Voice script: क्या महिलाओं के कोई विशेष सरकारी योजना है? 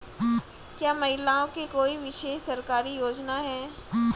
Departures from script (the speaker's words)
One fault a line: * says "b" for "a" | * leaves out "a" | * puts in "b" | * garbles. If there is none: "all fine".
all fine